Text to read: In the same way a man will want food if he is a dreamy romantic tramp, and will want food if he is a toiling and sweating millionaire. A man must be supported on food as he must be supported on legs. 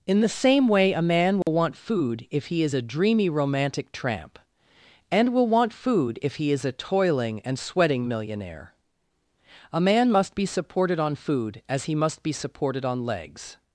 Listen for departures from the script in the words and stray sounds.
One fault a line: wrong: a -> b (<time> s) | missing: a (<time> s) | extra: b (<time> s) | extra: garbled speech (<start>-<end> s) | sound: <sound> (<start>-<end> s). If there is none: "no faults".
sound: dropout (1.4-1.5 s)